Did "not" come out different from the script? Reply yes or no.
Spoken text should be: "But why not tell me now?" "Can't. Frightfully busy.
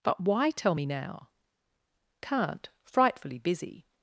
yes